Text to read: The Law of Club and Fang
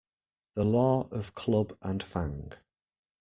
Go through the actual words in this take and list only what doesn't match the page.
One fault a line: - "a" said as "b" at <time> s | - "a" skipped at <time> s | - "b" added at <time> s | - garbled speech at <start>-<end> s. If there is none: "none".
none